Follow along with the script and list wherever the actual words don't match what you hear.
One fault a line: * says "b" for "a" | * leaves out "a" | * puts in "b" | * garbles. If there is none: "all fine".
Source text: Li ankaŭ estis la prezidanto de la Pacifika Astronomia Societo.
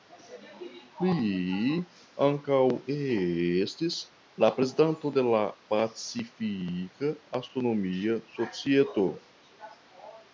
all fine